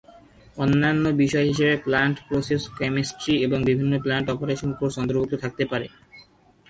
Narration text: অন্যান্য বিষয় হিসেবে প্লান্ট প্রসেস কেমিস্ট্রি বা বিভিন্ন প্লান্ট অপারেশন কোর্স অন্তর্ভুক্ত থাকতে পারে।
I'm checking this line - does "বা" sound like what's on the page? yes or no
no